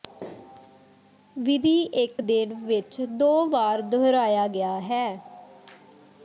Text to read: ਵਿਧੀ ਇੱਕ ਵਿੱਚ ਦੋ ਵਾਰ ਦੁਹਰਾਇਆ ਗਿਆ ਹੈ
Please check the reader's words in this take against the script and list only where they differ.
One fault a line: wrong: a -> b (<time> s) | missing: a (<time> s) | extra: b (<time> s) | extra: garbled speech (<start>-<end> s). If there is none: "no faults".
extra: ਦਿਨ (2.2 s)